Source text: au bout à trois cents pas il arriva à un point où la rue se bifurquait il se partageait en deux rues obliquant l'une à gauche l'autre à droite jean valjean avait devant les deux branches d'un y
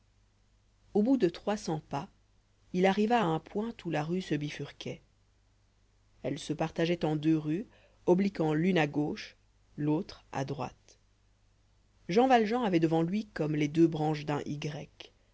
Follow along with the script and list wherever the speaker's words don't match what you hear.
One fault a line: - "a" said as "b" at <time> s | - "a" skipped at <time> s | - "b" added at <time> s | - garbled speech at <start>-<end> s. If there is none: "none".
- "à" said as "de" at 1.2 s
- "il" said as "elle" at 6.2 s
- "lui comme" added at 13.0 s